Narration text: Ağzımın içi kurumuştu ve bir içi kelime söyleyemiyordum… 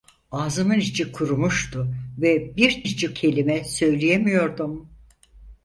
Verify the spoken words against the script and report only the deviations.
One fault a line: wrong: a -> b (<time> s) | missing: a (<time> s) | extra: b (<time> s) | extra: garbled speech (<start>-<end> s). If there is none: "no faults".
no faults